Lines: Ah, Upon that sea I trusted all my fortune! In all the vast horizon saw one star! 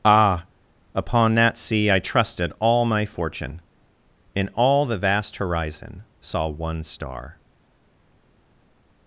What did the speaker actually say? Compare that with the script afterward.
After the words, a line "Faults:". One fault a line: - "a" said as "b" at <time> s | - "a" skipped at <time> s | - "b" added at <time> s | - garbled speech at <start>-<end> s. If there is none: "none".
Ah, Upon that sea I trusted all my fortune! In all the vast horizon saw one star!
Faults:
none